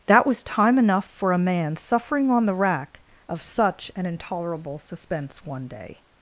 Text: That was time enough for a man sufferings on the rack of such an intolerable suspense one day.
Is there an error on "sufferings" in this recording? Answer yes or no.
yes